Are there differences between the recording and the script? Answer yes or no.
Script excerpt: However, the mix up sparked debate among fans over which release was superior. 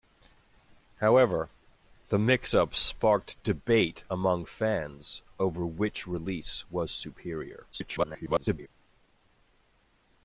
yes